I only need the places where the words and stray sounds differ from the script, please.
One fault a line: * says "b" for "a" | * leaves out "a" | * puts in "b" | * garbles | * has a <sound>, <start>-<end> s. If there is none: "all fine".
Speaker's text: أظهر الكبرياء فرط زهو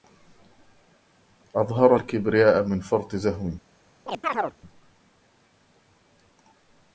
* puts in "من"
* has a chirp, 4.1-4.6 s